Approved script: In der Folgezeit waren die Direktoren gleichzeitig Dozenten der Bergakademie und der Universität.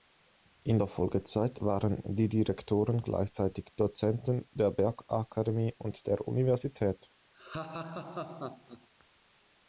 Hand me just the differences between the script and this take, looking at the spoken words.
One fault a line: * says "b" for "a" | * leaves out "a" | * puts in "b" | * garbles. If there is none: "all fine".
all fine